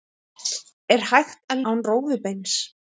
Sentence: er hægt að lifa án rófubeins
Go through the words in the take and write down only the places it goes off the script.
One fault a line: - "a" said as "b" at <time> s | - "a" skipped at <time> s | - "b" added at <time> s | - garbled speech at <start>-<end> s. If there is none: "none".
- "lifa" skipped at 1.6 s